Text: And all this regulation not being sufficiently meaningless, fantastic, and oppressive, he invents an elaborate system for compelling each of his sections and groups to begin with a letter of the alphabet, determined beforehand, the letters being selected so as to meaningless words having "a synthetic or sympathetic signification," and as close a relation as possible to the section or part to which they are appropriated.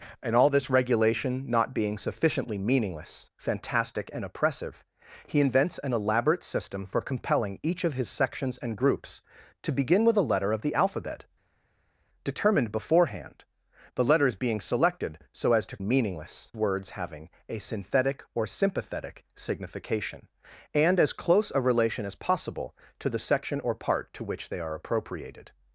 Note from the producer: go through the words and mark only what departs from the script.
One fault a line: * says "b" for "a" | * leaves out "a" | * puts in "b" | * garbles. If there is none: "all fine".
all fine